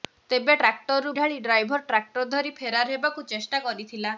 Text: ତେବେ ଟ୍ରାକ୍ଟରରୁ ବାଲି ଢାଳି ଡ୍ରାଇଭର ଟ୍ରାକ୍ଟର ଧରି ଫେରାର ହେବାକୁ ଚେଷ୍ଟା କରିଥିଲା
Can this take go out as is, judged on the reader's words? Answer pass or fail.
fail